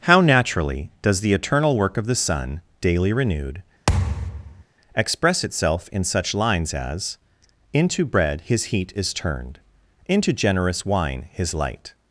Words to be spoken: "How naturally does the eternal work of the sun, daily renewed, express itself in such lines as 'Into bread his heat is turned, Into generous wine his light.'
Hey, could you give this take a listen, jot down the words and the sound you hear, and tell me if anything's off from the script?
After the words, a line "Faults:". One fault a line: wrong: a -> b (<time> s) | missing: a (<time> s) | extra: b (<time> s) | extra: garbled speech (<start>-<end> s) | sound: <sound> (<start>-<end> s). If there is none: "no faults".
"How naturally does the eternal work of the sun, daily renewed, express itself in such lines as 'Into bread his heat is turned, Into generous wine his light.'
Faults:
sound: thud (3.9-4.6 s)